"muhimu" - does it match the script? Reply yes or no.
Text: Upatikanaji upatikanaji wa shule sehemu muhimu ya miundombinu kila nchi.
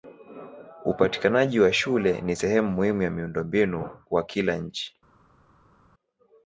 yes